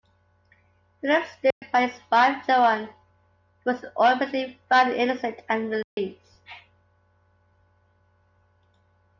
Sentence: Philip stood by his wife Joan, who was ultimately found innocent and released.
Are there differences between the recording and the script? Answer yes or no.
no